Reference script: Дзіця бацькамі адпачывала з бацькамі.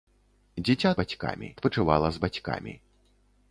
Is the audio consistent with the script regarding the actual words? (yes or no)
yes